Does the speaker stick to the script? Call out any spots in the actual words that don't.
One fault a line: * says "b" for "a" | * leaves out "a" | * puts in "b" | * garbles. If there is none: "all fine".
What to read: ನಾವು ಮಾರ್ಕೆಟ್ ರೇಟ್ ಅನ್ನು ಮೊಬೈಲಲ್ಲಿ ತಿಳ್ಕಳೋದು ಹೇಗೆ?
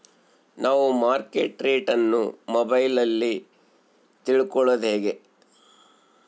all fine